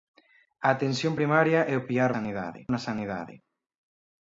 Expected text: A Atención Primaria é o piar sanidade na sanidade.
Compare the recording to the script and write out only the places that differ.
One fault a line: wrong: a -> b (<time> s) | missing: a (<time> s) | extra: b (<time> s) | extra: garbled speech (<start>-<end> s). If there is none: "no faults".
no faults